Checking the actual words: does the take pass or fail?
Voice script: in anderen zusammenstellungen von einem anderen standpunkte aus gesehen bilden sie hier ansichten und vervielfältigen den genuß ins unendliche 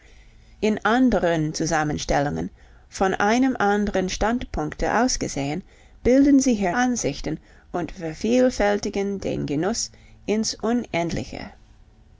pass